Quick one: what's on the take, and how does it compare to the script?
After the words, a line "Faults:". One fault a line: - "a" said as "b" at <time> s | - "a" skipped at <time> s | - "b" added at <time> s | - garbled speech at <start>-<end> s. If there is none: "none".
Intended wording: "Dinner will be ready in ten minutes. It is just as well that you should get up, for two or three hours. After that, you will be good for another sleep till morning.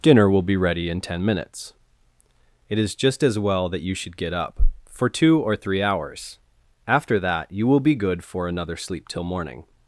"Dinner will be ready in ten minutes. It is just as well that you should get up, for two or three hours. After that, you will be good for another sleep till morning.
Faults:
none